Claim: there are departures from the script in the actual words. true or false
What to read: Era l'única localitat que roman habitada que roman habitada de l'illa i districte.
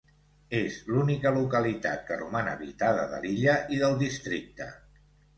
true